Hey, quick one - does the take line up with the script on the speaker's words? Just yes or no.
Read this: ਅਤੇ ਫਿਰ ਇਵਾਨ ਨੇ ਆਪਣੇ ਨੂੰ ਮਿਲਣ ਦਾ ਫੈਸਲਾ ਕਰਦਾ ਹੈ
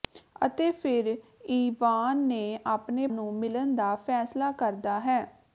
yes